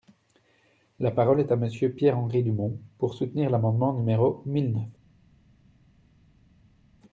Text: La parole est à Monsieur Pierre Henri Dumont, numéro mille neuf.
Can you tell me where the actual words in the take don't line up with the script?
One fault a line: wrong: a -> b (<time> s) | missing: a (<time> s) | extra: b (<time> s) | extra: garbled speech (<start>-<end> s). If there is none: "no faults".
extra: pour soutenir l'amendement (3.0 s)